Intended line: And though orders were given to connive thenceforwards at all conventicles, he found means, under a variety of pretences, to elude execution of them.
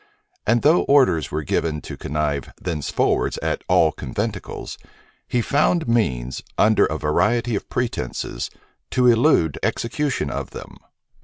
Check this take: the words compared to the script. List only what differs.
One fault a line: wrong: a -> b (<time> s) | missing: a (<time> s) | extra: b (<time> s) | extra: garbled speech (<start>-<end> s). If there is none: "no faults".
no faults